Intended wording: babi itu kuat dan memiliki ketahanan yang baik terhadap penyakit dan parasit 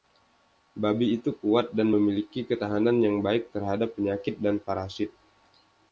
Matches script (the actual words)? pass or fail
pass